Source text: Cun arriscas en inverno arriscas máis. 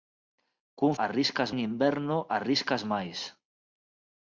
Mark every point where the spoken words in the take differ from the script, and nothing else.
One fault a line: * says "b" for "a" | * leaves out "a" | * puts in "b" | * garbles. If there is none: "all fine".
all fine